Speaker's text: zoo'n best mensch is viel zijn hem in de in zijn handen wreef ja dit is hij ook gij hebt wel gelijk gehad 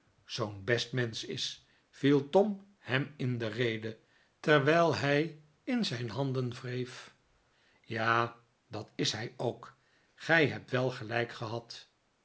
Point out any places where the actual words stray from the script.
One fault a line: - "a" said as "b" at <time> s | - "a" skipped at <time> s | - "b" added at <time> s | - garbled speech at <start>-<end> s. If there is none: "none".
- "zijn" said as "tom" at 2.3 s
- "rede terwijl hij" added at 3.5 s
- "dit" said as "dat" at 8.7 s